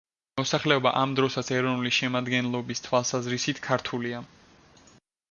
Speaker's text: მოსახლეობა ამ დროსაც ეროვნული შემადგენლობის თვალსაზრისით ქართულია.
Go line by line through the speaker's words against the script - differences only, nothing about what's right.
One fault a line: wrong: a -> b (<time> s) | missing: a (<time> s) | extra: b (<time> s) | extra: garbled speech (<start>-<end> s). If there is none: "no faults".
no faults